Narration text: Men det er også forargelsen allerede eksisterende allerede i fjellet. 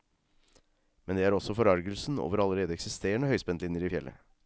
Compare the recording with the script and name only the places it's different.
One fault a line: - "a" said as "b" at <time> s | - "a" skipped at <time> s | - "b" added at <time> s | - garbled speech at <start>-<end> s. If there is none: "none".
- "over" added at 2.2 s
- "allerede" said as "høyspentlinjer" at 3.3 s